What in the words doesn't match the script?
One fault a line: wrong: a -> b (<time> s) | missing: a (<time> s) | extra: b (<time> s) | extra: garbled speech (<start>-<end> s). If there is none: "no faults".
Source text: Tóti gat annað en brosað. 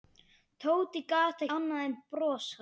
no faults